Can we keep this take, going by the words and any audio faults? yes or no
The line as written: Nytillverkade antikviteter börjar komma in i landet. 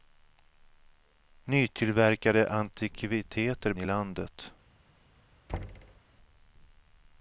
no